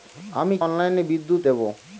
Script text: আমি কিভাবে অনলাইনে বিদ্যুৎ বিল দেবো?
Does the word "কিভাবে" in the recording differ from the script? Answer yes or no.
yes